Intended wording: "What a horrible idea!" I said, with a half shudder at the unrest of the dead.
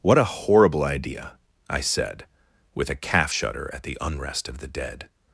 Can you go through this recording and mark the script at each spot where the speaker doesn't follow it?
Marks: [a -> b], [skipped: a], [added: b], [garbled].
"What a horrible idea!" I said, with a [half -> calf] shudder at the unrest of the dead.